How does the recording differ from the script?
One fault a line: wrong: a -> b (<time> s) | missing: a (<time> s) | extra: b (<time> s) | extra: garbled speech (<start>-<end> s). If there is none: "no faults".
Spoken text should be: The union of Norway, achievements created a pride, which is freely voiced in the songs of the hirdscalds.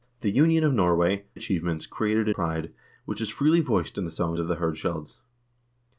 no faults